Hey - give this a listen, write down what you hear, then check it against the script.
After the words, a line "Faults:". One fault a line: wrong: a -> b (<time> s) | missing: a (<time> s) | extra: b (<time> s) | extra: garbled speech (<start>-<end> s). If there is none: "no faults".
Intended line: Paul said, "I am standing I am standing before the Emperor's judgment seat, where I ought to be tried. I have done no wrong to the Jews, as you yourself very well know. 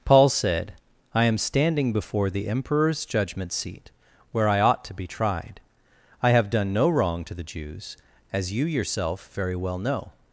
Paul said, "I am standing before the Emperor's judgment seat, where I ought to be tried. I have done no wrong to the Jews, as you yourself very well know.
Faults:
missing: I am standing (1.9 s)